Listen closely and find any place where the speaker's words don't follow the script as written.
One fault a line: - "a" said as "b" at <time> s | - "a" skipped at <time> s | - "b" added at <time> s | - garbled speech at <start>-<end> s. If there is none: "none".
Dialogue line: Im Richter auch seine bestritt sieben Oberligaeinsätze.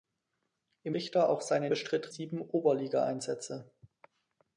none